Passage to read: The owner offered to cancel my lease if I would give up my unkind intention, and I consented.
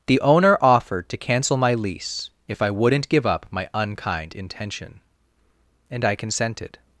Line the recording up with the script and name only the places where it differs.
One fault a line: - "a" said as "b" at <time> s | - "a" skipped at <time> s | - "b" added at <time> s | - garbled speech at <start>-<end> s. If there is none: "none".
- "would" said as "wouldn't" at 2.7 s